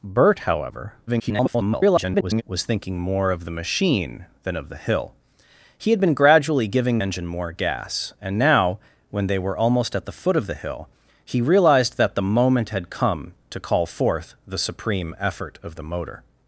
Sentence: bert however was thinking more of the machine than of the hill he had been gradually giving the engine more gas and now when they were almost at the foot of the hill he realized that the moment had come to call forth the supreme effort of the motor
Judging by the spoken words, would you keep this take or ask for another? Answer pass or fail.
fail